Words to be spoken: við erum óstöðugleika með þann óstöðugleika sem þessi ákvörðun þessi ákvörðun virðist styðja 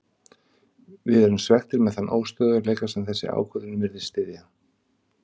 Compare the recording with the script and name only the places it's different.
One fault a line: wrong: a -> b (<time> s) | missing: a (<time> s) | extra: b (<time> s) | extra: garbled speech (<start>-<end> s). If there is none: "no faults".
wrong: óstöðugleika -> svekktir (1.4 s)
missing: þessi ákvörðun (3.8 s)